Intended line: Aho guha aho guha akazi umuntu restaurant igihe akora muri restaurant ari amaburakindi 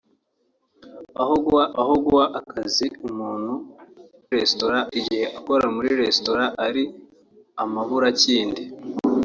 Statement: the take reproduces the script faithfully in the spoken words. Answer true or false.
true